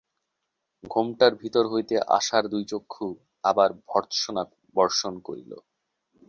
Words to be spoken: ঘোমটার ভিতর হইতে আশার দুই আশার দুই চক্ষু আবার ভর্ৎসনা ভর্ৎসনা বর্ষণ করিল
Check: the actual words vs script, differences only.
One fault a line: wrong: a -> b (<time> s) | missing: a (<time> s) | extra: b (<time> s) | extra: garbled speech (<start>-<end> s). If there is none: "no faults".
missing: আশার দুই (2.6 s)
missing: ভর্ৎসনা (4.4 s)